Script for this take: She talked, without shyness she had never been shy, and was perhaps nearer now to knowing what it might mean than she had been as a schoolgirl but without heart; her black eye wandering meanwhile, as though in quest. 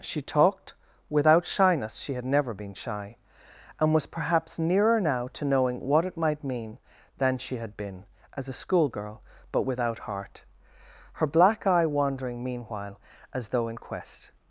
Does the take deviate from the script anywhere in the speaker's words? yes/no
no